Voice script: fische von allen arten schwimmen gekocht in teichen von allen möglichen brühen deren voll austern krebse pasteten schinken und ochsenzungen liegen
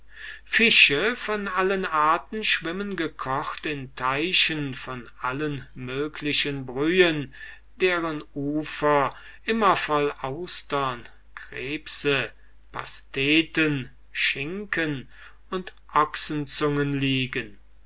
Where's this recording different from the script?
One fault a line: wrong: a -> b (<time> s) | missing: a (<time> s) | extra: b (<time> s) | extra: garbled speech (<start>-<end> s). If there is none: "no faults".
extra: ufer immer (8.3 s)